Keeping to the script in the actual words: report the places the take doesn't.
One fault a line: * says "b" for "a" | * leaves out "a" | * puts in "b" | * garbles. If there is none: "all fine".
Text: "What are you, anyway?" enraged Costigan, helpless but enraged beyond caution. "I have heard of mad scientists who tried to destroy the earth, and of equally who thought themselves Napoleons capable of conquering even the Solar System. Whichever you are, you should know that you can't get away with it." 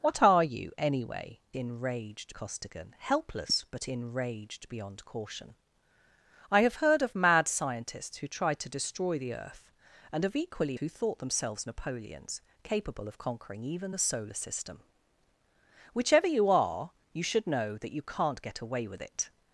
all fine